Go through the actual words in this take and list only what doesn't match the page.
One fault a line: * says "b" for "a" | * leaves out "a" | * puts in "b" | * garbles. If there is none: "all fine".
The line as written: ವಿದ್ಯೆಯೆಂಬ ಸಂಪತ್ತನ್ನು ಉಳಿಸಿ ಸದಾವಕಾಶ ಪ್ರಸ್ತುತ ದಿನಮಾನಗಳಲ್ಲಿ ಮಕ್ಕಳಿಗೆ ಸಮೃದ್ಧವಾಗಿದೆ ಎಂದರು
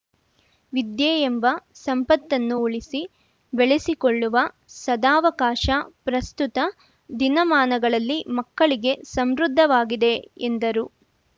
* puts in "ಬೆಳೆಸಿಕೊಳ್ಳುವ"